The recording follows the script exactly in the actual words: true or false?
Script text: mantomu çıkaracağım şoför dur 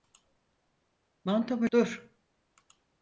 false